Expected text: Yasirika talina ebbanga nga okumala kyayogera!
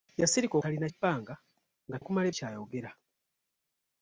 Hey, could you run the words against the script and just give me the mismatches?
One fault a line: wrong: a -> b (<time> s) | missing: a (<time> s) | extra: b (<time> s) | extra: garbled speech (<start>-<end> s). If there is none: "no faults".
no faults